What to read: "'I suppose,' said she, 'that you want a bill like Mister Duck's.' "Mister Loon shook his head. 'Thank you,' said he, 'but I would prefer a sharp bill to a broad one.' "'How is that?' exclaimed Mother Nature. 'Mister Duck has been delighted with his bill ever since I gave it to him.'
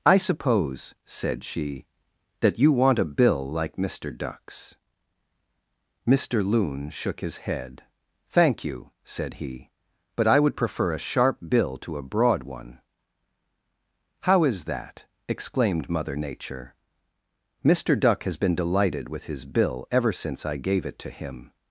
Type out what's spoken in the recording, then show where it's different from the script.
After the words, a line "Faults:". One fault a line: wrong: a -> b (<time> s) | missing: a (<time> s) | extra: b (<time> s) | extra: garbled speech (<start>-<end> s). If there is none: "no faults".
"'I suppose,' said she, 'that you want a bill like Mister Duck's.' "Mister Loon shook his head. 'Thank you,' said he, 'but I would prefer a sharp bill to a broad one.' "'How is that?' exclaimed Mother Nature. 'Mister Duck has been delighted with his bill ever since I gave it to him.'
Faults:
no faults